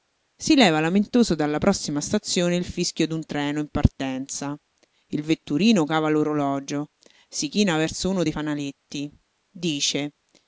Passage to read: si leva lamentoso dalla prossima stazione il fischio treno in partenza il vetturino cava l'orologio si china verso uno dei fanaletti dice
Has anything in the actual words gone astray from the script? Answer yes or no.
yes